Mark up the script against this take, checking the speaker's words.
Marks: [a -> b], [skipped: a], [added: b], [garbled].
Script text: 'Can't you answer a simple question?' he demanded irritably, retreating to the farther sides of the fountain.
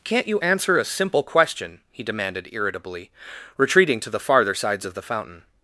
'Can't you answer a simple question?' he demanded irritably, retreating to the farther sides of the fountain.